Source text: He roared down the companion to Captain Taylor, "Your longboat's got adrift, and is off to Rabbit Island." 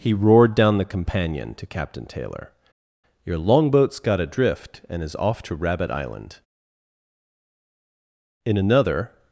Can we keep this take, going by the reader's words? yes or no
no